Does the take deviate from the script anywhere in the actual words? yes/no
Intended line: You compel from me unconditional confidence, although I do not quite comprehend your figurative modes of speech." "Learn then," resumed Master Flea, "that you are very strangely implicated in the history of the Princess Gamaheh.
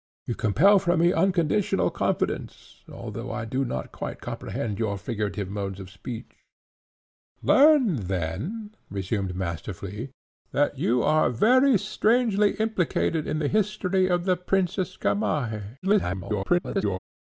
yes